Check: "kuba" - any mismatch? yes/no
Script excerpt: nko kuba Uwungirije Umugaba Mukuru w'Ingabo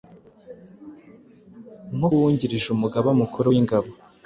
yes